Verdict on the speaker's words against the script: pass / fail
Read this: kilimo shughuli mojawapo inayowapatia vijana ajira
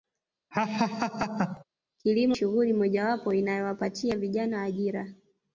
pass